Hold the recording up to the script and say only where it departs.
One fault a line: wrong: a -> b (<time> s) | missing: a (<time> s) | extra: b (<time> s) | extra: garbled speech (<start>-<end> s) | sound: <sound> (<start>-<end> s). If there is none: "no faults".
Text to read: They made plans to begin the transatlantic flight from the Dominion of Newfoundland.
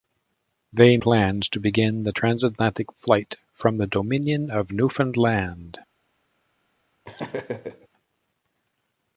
missing: made (1.0 s)
sound: laugh (7.0-7.9 s)